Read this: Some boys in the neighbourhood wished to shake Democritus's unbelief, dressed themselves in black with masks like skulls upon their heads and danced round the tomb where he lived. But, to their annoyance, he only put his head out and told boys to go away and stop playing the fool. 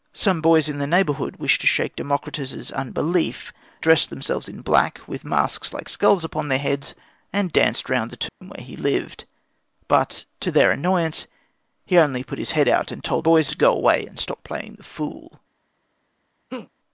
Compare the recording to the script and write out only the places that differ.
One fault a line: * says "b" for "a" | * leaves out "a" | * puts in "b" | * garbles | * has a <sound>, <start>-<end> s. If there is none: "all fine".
* has a dropout, 8.3-8.4 s
* has a laugh, 16.5-16.7 s